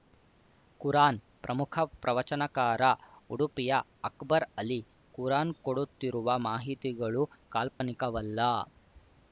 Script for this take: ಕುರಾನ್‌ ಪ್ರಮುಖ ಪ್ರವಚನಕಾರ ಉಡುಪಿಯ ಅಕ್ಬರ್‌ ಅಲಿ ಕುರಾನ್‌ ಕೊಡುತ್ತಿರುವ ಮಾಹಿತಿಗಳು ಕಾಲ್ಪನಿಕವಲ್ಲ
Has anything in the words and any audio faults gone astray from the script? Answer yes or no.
yes